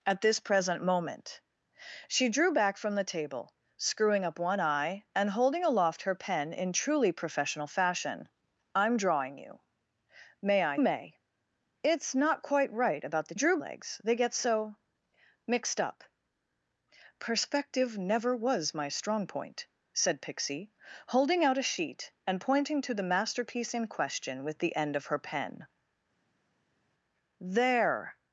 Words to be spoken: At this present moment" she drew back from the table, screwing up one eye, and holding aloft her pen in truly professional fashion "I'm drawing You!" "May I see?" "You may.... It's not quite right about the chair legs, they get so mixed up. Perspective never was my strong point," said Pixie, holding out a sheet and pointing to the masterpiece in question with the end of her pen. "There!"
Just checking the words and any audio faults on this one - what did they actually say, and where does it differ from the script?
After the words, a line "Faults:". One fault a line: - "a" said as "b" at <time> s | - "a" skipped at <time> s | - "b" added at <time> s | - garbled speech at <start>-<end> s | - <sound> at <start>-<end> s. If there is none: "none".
At this present moment" she drew back from the table, screwing up one eye, and holding aloft her pen in truly professional fashion "I'm drawing You!" "May I may.... It's not quite right about the drew legs, they get so mixed up. Perspective never was my strong point," said Pixie, holding out a sheet and pointing to the masterpiece in question with the end of her pen. "There!"
Faults:
- "see You" skipped at 10.8 s
- "chair" said as "drew" at 13.3 s